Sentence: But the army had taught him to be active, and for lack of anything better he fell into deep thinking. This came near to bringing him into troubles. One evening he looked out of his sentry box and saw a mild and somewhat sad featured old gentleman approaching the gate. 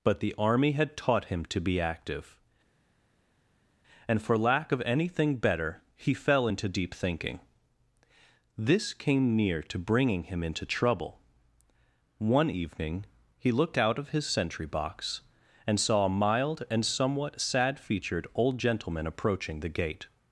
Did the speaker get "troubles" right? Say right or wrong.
wrong